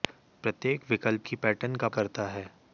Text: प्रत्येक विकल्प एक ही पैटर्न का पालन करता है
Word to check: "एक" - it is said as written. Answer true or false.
false